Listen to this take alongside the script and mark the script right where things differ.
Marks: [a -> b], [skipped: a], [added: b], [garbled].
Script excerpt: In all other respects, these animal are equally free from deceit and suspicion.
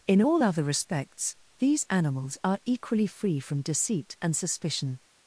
In all other respects, these [animal -> animals] are equally free from deceit and suspicion.